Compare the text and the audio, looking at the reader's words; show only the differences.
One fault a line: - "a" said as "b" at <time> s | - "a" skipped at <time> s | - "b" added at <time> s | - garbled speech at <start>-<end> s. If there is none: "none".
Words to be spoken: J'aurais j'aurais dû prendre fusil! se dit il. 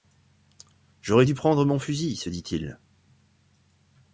- "j'aurais" skipped at 1.3 s
- "mon" added at 1.7 s